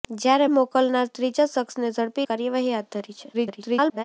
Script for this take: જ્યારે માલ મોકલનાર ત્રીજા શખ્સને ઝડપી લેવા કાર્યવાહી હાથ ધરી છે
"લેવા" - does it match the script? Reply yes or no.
no